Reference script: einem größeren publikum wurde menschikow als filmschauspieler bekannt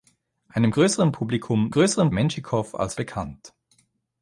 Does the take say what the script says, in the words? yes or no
no